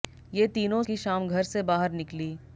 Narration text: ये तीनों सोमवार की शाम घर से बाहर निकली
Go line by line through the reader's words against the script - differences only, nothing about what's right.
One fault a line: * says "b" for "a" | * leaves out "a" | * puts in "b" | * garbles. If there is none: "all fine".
* leaves out "सोमवार"